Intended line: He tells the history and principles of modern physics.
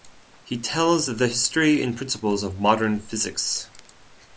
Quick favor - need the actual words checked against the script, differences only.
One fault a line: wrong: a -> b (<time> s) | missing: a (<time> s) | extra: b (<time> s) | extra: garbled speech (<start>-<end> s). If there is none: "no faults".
no faults